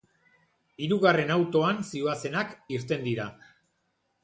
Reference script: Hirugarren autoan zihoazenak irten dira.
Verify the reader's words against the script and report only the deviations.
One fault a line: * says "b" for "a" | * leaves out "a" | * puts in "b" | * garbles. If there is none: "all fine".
all fine